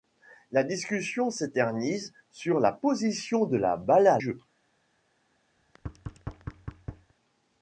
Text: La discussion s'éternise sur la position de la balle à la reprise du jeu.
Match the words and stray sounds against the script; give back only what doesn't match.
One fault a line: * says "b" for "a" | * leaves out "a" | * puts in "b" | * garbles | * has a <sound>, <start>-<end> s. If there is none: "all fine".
* leaves out "la reprise du"
* has a thud, 5.6-7.1 s